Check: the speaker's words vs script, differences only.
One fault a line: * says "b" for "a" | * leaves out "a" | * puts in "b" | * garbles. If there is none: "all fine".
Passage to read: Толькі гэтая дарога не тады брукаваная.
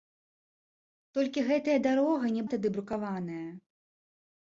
all fine